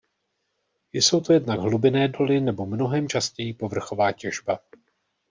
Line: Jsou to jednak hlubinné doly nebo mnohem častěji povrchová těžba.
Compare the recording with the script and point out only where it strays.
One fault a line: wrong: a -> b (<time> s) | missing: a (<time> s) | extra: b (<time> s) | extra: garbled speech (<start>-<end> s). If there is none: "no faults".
no faults